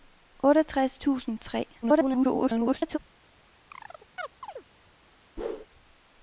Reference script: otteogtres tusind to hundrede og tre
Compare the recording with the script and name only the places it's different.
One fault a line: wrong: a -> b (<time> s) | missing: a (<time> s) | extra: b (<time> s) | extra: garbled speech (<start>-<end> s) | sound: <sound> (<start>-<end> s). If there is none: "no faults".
missing: to hundrede (1.4 s)
extra: garbled speech (1.8-3.0 s)
sound: chirp (3.7-4.7 s)
sound: whoosh (5.4-5.7 s)